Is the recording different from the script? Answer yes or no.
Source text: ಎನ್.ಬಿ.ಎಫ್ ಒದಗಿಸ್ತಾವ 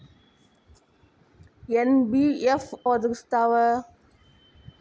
no